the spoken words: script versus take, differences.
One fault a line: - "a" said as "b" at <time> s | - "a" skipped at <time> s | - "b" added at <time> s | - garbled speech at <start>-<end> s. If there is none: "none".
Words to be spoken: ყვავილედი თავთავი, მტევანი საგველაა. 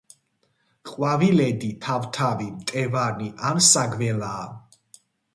- "ან" added at 3.5 s